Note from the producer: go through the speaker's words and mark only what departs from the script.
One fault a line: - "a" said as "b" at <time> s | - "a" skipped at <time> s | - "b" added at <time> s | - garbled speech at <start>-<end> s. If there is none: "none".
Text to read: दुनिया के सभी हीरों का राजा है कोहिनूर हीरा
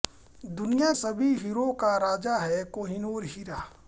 - "के" skipped at 0.9 s